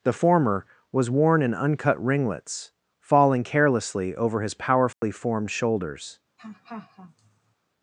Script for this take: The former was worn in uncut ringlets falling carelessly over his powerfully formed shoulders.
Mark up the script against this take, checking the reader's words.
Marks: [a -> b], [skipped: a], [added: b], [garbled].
The former was worn in uncut ringlets falling carelessly over his powerfully formed shoulders.